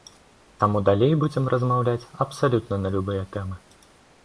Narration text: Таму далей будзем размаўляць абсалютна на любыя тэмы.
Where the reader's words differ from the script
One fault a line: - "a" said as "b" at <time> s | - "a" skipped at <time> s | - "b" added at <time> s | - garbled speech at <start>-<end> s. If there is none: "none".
none